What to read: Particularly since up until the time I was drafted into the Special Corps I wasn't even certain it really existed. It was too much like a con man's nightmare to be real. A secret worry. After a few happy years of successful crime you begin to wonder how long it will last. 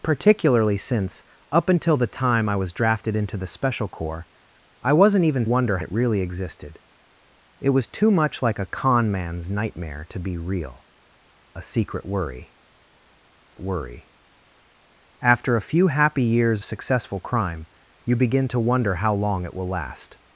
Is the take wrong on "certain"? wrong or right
wrong